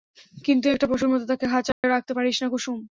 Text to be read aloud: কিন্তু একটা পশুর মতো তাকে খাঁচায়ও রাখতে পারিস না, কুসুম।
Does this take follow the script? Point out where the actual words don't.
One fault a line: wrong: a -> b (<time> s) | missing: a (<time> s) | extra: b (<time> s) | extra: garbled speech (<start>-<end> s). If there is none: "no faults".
no faults